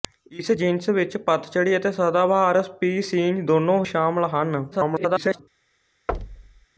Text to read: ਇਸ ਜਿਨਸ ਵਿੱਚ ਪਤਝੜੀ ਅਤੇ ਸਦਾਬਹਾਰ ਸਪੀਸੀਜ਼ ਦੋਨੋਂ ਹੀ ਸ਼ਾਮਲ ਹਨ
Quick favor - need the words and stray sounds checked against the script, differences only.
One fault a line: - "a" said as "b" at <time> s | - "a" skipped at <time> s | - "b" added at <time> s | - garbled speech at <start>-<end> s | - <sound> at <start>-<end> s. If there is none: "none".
- "ਹੀ" skipped at 3.8 s
- garbled speech at 4.7-5.4 s
- thud at 6.1-6.7 s